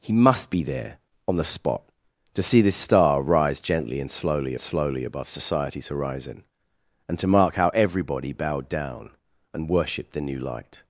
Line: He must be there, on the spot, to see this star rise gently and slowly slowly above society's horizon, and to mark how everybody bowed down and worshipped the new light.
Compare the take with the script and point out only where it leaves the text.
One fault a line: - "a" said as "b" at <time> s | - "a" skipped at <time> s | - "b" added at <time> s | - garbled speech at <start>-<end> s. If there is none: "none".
none